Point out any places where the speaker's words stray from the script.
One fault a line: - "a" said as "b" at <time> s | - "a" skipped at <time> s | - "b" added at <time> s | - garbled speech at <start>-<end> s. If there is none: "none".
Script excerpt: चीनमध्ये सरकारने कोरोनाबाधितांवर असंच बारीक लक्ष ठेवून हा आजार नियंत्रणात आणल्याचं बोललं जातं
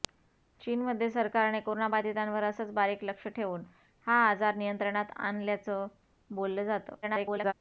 - garbled speech at 7.0-7.5 s